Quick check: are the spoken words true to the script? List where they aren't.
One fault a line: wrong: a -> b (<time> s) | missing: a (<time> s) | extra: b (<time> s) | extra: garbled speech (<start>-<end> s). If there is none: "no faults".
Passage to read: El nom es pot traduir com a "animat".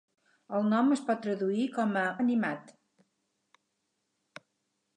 no faults